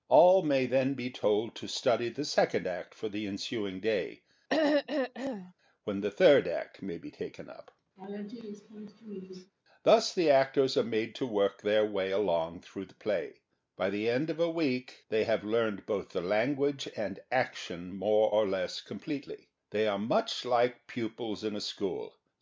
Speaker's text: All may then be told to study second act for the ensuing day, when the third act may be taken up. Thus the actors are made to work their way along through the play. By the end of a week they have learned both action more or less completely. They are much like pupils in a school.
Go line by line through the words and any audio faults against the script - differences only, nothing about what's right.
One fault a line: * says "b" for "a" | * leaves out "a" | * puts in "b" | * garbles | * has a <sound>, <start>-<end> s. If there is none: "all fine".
* puts in "the"
* has a throat clearing, 4.5-5.5 s
* has a laugh, 8.0-9.5 s
* puts in "the language and"